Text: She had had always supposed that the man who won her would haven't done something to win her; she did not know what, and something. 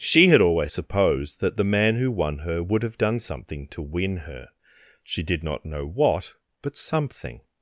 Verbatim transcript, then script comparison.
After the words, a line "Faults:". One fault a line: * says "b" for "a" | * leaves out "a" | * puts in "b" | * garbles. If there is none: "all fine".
She had always supposed that the man who won her would have done something to win her; she did not know what, but something.
Faults:
* leaves out "had"
* says "have" for "haven't"
* says "but" for "and"